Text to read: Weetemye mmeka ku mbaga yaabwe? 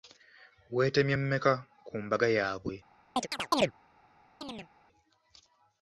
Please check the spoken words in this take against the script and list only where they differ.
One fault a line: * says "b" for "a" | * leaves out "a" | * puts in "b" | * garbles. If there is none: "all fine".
all fine